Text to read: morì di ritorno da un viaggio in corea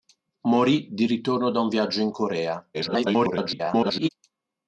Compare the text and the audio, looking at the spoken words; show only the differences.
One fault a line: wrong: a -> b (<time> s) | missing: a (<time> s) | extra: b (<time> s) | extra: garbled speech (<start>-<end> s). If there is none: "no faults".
extra: garbled speech (2.7-4.1 s)